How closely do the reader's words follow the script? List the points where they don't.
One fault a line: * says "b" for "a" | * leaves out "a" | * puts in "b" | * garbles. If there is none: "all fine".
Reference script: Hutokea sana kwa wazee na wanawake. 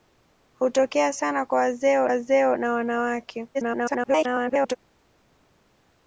* puts in "wazee"
* garbles